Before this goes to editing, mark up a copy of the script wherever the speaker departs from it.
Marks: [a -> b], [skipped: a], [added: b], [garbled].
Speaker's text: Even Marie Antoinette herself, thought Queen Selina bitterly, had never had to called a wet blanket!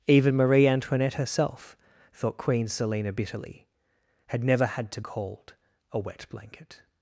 Even Marie Antoinette herself, thought Queen Selina bitterly, had never had to called a wet blanket!